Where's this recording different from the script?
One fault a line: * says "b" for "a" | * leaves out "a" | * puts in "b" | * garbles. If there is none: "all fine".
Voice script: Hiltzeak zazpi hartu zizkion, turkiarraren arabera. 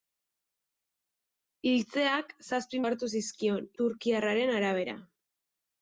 all fine